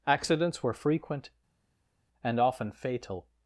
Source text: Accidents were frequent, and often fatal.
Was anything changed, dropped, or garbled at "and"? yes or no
no